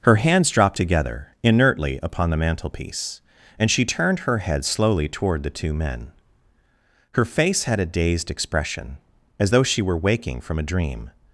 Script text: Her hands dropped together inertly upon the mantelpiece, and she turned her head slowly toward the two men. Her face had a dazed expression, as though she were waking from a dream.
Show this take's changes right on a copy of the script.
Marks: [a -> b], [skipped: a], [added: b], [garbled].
Her hands dropped together inertly upon the mantelpiece, and she turned her head slowly toward the two men. Her face had a dazed expression, as though she were waking from a dream.